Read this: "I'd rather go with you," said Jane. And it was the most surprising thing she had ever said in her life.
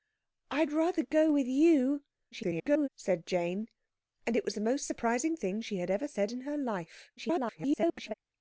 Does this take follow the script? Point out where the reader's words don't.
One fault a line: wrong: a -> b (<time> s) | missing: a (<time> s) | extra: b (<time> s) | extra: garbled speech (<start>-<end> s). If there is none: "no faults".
extra: garbled speech (2.3-2.9 s)
extra: garbled speech (7.2-8.1 s)